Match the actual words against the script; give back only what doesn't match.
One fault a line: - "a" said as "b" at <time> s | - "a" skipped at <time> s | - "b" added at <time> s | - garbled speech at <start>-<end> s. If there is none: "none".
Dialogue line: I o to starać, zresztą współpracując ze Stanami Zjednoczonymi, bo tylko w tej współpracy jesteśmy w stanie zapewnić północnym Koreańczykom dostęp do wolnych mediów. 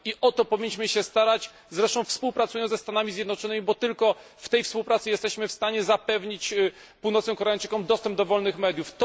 - "powinniśmy się" added at 0.5 s